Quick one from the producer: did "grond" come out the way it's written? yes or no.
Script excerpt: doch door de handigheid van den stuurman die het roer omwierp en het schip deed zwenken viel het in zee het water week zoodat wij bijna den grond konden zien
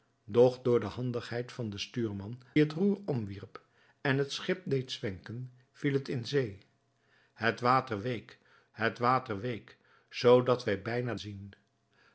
no